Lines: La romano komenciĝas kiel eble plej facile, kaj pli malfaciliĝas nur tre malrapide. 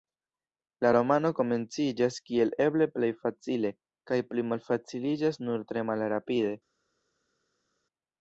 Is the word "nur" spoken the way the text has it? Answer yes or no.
yes